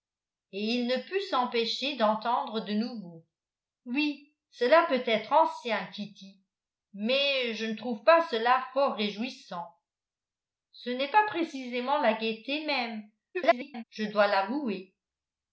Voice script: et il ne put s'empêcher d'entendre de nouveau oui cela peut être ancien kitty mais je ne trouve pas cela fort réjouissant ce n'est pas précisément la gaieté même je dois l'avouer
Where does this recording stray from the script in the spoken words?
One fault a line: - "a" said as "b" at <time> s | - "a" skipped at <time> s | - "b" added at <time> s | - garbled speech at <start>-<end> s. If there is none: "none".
- garbled speech at 13.3-13.8 s